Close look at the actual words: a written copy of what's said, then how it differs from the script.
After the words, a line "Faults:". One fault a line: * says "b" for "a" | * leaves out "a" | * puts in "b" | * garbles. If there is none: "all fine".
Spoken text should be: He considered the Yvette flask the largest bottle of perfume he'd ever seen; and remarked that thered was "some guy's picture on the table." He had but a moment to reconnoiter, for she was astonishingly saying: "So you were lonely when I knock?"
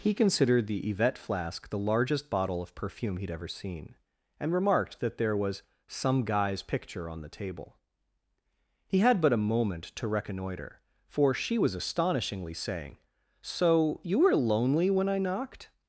He considered the Yvette flask the largest bottle of perfume he'd ever seen; and remarked that there was "some guy's picture on the table." He had but a moment to reconnoiter, for she was astonishingly saying: "So you were lonely when I knocked?"
Faults:
* says "there" for "thered"
* says "knocked" for "knock"